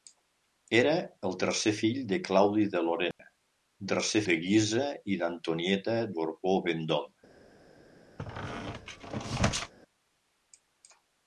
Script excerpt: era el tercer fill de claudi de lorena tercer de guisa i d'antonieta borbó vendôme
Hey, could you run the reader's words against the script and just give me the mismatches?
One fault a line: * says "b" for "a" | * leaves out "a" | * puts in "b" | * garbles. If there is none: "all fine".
all fine